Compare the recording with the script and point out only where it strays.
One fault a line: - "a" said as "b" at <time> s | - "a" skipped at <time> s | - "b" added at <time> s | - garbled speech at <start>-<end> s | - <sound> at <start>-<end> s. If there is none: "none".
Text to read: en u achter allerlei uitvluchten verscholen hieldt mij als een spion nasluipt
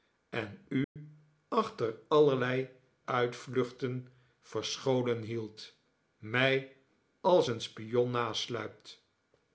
- dropout at 0.8-1.0 s